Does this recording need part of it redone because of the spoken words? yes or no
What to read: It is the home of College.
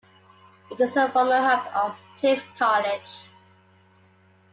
yes